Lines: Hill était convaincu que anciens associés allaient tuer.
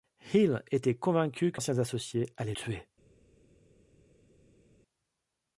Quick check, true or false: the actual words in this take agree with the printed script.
true